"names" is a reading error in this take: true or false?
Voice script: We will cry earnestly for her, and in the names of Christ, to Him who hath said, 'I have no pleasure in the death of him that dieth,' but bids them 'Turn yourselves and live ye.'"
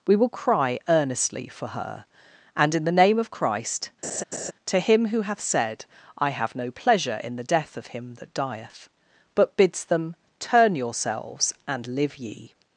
true